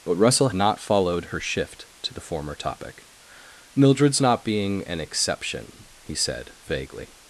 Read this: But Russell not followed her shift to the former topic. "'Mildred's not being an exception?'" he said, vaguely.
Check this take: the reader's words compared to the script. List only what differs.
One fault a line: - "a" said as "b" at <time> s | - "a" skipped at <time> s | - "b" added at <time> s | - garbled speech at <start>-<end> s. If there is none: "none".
none